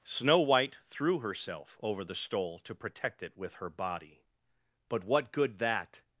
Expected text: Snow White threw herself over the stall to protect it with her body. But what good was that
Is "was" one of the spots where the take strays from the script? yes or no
yes